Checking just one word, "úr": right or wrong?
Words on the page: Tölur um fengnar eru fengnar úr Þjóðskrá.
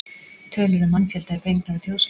right